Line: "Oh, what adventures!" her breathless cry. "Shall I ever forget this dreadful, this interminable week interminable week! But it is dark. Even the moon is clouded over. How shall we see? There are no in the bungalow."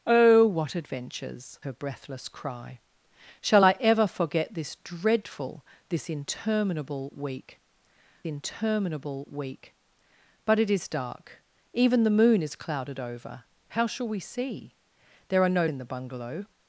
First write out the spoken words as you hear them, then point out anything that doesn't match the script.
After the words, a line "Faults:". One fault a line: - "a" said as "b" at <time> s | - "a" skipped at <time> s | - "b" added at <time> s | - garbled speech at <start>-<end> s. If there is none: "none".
"Oh, what adventures!" her breathless cry. "Shall I ever forget this dreadful, this interminable week interminable week! But it is dark. Even the moon is clouded over. How shall we see? There are no in the bungalow."
Faults:
none